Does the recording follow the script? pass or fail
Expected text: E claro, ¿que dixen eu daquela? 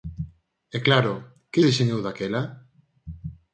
pass